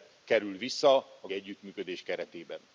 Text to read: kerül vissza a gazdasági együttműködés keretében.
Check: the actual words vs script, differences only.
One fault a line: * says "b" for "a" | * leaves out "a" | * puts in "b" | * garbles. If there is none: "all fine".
* leaves out "gazdasági"